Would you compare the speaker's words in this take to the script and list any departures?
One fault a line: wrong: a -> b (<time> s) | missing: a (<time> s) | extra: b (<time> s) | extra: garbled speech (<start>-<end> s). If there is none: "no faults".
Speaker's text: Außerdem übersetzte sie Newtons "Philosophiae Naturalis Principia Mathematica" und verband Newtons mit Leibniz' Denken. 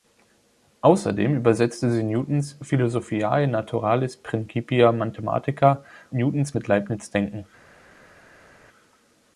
missing: und verband (5.8 s)